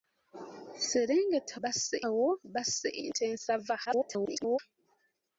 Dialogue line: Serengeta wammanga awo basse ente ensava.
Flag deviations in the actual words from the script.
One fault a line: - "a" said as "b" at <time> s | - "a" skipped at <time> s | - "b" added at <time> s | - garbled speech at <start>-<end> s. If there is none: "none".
- "wammanga" said as "basse" at 1.6 s
- garbled speech at 3.9-4.6 s